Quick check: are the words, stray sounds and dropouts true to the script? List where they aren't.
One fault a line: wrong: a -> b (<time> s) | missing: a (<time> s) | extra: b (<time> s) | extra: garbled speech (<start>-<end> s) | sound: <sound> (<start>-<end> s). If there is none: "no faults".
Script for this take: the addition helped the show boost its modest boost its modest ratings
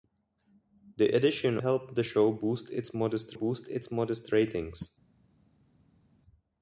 no faults